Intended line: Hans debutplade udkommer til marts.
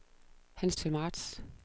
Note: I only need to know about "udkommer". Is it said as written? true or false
false